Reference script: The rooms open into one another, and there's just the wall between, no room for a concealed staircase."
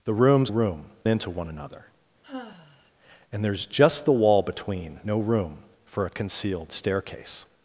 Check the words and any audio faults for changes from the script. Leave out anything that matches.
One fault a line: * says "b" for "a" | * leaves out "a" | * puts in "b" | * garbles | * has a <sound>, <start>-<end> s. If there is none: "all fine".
* says "room" for "open"
* has a sigh, 2.2-2.9 s